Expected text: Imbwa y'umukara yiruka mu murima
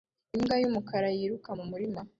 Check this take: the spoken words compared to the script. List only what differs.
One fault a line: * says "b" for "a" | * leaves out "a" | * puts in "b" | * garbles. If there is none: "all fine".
all fine